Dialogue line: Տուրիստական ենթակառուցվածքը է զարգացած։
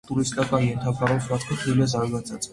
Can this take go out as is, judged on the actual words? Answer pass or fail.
fail